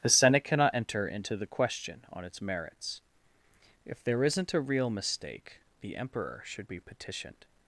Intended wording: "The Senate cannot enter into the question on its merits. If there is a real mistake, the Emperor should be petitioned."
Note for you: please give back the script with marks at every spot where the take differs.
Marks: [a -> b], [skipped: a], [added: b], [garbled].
"The Senate cannot enter into the question on its merits. If there [is -> isn't] a real mistake, the Emperor should be petitioned."